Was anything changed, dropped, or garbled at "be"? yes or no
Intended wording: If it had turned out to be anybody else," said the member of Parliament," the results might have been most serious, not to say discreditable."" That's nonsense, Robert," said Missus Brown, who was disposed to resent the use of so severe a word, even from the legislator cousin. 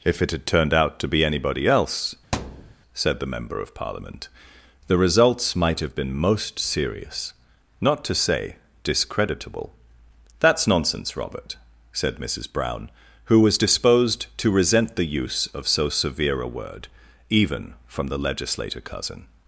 no